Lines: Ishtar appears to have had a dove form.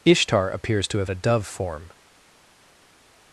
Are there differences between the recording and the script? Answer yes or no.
yes